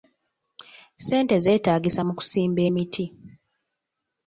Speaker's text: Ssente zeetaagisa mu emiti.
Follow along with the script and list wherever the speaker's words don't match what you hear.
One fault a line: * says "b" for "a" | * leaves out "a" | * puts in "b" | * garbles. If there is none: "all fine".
* puts in "kusimba"